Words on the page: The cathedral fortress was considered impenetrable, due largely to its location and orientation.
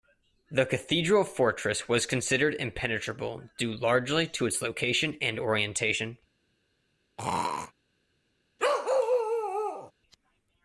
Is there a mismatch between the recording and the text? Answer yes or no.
no